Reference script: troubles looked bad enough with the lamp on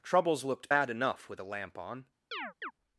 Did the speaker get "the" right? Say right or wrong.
right